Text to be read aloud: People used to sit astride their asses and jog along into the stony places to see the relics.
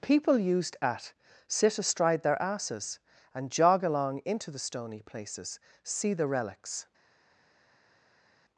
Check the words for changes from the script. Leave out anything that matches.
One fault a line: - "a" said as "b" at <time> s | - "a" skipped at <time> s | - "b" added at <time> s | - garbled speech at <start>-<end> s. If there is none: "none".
- "to" said as "at" at 0.8 s
- "to" skipped at 5.6 s